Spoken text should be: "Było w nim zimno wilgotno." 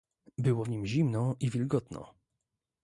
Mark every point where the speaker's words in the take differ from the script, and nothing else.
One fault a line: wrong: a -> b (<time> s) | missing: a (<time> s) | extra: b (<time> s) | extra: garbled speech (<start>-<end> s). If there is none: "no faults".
extra: i (1.4 s)